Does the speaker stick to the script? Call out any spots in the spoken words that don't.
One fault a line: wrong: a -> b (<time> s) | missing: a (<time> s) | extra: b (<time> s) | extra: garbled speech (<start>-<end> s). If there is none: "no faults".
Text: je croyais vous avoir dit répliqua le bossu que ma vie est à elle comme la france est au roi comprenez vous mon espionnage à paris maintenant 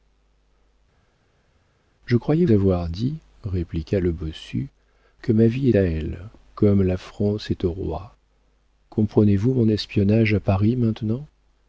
missing: vous (2.5 s)
missing: est (5.7 s)